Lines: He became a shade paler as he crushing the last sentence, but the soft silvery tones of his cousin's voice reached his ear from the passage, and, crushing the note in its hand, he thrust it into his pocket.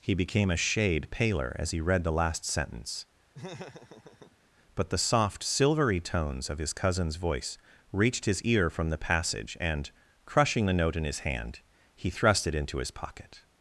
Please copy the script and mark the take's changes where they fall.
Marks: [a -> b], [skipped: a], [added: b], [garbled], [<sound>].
He became a shade paler as he [crushing -> read] the last sentence, [laugh] but the soft silvery tones of his cousin's voice reached his ear from the passage, and, crushing the note in [its -> his] hand, he thrust it into his pocket.